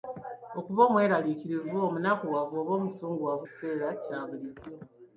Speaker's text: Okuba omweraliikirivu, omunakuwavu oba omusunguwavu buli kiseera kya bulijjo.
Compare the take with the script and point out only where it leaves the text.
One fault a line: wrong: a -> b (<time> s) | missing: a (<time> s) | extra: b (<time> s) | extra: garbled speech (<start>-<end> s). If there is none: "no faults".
missing: buli (3.5 s)